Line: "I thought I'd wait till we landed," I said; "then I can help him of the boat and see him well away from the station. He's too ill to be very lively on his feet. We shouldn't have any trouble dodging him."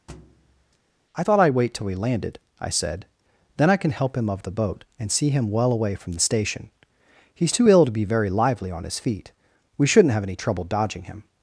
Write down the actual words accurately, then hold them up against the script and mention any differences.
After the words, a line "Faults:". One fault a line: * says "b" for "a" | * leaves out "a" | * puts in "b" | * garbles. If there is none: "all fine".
"I thought I'd wait till we landed," I said; "then I can help him of the boat and see him well away from the station. He's too ill to be very lively on his feet. We shouldn't have any trouble dodging him."
Faults:
all fine